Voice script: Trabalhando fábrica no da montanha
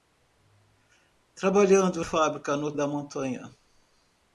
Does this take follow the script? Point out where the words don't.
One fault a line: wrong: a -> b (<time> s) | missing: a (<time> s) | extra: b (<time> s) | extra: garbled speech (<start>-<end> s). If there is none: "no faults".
no faults